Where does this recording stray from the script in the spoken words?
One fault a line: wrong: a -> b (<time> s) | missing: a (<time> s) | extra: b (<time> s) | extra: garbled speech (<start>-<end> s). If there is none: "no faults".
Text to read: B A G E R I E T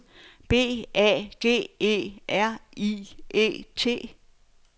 no faults